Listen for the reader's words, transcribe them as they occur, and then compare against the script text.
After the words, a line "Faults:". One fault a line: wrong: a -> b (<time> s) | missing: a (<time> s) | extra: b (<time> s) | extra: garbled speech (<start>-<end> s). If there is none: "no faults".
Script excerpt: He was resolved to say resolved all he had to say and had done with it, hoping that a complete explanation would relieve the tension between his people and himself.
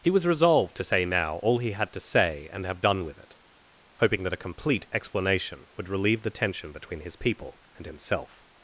He was resolved to say now all he had to say and have done with it, hoping that a complete explanation would relieve the tension between his people and himself.
Faults:
wrong: resolved -> now (1.0 s)
wrong: had -> have (2.6 s)